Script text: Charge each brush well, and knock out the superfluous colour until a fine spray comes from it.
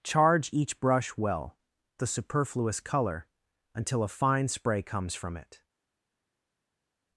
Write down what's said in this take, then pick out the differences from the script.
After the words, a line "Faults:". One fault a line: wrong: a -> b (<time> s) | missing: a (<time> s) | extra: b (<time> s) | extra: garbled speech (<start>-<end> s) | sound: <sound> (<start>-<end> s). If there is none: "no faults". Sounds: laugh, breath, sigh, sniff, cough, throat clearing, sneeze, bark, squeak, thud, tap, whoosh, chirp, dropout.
Charge each brush well, the superfluous colour until a fine spray comes from it.
Faults:
missing: and knock out (1.6 s)